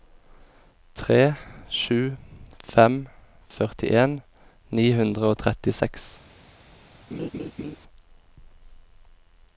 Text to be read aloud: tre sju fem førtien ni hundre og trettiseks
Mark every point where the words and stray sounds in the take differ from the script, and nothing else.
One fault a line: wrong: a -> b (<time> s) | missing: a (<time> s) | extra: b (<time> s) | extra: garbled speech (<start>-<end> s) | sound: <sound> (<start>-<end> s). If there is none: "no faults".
sound: laugh (7.1-7.8 s)